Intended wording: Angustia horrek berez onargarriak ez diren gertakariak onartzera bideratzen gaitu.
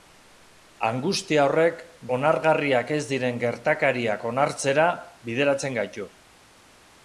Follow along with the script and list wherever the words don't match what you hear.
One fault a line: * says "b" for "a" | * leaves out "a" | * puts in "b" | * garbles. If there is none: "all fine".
* leaves out "berez"